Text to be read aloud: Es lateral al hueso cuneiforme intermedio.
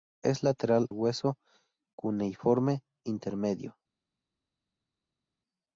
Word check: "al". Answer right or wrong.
wrong